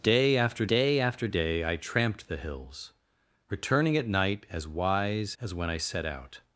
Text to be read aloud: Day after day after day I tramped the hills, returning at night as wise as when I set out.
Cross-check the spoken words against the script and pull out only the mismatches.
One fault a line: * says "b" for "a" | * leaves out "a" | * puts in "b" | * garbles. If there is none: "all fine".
all fine